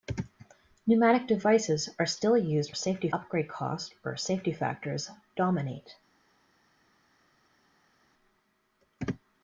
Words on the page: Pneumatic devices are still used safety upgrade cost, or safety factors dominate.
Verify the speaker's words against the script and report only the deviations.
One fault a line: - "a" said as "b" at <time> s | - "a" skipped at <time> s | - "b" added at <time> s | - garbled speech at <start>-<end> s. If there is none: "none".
none